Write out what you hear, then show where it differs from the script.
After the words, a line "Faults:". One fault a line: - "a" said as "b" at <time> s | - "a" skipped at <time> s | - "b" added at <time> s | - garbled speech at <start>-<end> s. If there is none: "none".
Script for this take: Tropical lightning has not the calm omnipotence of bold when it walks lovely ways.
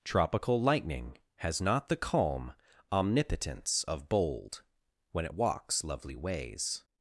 Tropical lightning has not the calm omnipotence of bold when it walks lovely ways.
Faults:
none